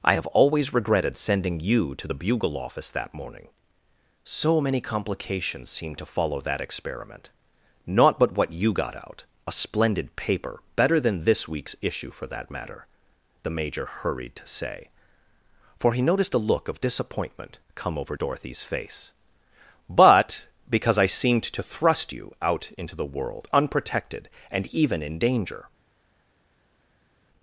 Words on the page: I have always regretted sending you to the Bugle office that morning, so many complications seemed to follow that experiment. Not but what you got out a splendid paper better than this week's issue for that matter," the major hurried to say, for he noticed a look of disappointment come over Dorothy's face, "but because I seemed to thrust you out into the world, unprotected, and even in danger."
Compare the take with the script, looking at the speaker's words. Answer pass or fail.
pass